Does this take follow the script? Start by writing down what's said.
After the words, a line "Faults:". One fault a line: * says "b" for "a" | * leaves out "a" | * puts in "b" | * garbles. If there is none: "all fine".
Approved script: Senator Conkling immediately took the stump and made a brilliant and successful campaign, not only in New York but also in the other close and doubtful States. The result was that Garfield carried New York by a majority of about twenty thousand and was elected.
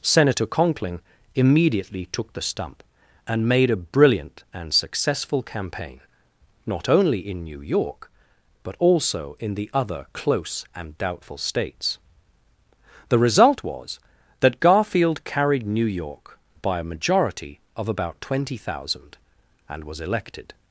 Senator Conkling immediately took the stump and made a brilliant and successful campaign, not only in New York but also in the other close and doubtful States. The result was that Garfield carried New York by a majority of about twenty thousand and was elected.
Faults:
all fine